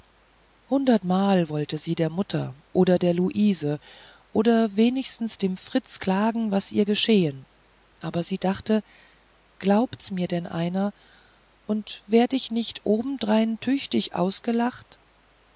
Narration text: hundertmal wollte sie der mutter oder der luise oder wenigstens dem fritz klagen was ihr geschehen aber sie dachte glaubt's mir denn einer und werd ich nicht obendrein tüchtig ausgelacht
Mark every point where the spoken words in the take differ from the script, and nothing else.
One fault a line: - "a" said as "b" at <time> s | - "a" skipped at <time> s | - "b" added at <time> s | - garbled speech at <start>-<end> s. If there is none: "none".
none